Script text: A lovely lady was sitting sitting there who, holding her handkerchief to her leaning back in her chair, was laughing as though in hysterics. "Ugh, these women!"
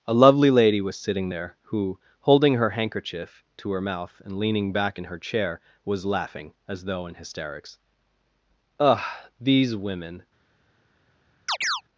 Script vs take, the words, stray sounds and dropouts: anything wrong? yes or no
yes